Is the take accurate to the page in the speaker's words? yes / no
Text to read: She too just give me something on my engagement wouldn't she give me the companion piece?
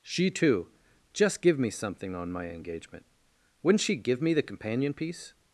yes